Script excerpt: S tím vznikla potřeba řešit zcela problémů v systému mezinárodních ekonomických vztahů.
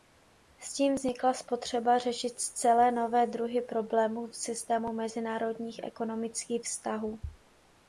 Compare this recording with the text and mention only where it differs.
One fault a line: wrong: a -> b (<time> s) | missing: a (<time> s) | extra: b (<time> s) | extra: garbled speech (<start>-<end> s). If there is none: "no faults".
extra: nové druhy (2.9 s)